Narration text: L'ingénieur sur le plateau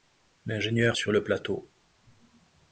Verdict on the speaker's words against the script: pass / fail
pass